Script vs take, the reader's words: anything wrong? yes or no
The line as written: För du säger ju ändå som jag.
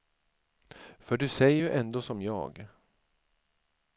no